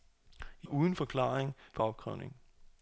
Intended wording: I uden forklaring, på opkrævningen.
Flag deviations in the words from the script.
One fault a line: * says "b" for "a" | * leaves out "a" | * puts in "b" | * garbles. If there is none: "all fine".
all fine